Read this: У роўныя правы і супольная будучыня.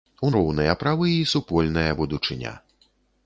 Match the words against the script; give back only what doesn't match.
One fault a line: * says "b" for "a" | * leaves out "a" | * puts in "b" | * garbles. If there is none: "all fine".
all fine